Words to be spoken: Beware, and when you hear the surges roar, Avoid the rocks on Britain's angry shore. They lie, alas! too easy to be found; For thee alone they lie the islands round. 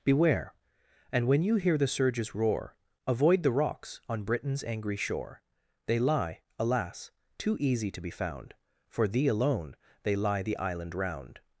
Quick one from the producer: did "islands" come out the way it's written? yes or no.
no